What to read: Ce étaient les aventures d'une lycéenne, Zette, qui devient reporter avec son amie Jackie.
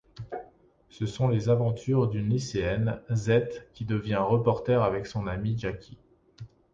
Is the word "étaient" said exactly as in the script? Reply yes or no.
no